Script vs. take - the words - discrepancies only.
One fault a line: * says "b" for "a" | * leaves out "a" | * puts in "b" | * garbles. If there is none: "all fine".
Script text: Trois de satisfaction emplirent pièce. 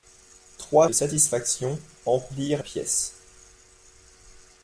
all fine